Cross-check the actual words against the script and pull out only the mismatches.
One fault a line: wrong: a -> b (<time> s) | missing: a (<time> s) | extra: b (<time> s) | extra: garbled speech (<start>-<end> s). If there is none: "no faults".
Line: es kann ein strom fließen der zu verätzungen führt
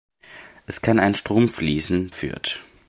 missing: der zu verätzungen (2.1 s)